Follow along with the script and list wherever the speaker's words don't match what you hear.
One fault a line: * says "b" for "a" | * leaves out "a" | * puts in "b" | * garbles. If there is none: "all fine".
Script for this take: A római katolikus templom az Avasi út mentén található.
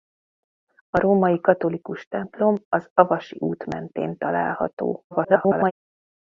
* garbles